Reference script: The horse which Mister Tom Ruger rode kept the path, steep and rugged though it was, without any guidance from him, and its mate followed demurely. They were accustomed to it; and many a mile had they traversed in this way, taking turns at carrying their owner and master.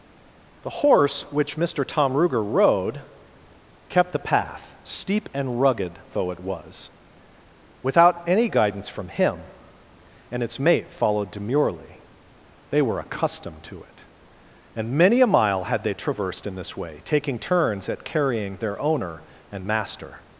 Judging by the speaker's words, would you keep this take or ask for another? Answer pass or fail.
pass